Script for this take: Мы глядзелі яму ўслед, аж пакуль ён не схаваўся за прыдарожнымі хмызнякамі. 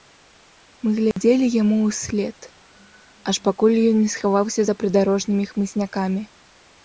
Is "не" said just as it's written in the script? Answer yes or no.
yes